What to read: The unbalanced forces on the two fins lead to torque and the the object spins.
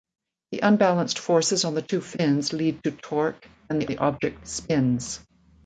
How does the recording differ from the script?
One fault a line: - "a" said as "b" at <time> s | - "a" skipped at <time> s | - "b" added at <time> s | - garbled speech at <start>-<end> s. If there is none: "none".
none